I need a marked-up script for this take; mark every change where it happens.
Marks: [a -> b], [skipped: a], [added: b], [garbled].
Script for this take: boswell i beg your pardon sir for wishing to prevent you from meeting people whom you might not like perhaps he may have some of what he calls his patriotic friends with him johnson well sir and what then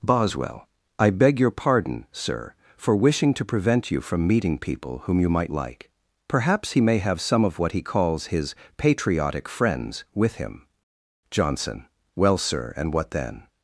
boswell i beg your pardon sir for wishing to prevent you from meeting people whom you might [skipped: not] like perhaps he may have some of what he calls his patriotic friends with him johnson well sir and what then